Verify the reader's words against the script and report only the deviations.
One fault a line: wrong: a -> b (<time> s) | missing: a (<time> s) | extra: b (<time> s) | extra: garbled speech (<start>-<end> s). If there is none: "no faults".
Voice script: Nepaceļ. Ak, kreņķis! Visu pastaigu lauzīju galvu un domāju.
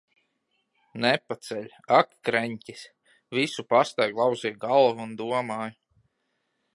no faults